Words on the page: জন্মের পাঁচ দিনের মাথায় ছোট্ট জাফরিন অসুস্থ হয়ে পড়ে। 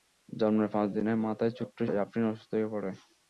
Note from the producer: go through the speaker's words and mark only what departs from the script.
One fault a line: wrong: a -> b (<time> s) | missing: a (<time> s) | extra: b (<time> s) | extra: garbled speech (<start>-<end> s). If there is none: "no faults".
no faults